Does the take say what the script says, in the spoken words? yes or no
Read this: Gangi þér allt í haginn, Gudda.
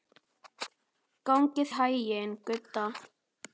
no